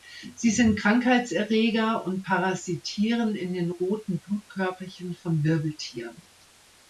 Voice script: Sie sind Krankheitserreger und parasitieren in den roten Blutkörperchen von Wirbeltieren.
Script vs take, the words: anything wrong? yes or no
no